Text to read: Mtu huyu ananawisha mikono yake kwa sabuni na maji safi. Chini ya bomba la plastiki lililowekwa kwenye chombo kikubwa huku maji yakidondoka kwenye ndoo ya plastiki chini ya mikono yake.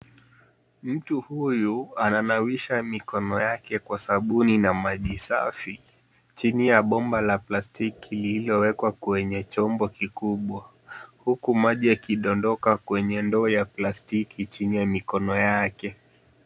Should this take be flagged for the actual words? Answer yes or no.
no